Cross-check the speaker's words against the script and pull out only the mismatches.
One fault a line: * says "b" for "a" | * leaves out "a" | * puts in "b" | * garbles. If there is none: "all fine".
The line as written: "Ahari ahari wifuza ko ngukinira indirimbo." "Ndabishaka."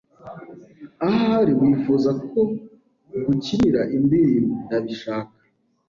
* leaves out "ahari"